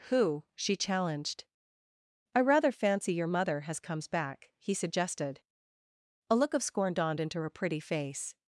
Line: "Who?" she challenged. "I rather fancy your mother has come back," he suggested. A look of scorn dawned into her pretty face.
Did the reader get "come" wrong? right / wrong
wrong